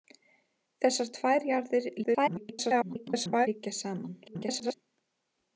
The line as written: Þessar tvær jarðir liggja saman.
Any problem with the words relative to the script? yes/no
yes